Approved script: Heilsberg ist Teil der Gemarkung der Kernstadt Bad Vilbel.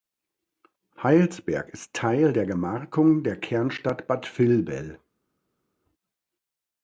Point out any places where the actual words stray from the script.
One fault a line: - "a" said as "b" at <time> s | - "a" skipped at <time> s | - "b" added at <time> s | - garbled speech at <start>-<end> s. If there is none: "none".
none